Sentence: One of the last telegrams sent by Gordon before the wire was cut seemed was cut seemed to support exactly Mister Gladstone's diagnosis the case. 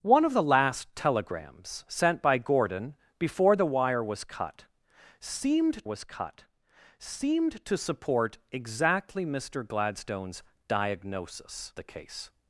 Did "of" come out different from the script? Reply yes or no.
no